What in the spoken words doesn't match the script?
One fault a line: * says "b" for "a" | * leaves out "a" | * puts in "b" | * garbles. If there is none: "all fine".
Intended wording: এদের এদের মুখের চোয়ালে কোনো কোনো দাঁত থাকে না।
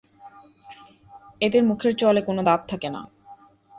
* leaves out "এদের"
* leaves out "কোনো"